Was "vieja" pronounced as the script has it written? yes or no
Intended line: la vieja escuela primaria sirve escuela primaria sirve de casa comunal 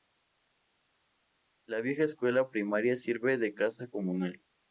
yes